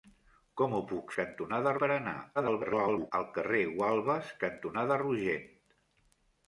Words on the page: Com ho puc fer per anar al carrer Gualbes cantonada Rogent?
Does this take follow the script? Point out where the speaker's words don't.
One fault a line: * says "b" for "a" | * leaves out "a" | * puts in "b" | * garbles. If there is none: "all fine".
* says "cantonada" for "fer"
* garbles